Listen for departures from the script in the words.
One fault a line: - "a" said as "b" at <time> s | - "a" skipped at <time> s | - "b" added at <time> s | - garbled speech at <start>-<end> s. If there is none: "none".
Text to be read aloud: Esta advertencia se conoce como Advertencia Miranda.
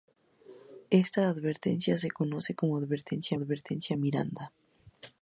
- "Advertencia" added at 3.3 s